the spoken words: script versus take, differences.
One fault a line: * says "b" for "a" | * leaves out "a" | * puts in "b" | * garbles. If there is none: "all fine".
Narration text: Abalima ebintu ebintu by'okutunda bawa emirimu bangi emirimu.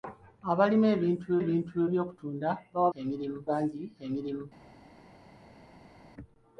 all fine